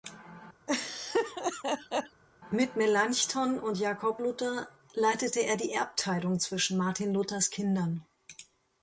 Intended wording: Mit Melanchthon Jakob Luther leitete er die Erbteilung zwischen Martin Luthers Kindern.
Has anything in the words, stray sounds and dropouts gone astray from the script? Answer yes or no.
yes